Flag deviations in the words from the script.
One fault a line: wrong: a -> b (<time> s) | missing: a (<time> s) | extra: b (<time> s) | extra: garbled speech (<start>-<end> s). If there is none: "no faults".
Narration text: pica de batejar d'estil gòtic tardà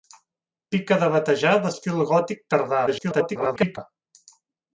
extra: garbled speech (2.9-3.8 s)